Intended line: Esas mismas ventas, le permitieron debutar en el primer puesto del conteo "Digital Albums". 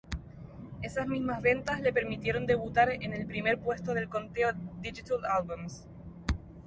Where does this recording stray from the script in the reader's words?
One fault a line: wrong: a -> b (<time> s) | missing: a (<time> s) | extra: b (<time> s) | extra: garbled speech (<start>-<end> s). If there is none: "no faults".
no faults